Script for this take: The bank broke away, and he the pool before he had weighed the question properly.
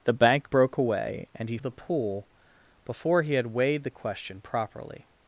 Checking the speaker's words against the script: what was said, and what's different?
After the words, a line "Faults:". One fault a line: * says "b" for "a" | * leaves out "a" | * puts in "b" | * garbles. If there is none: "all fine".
The bank broke away, and he the pool before he had weighed the question properly.
Faults:
all fine